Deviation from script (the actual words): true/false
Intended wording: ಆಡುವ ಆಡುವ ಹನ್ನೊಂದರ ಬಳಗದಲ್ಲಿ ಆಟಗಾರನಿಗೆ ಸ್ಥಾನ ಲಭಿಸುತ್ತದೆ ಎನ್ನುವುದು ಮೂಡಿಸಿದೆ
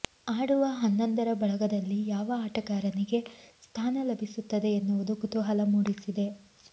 true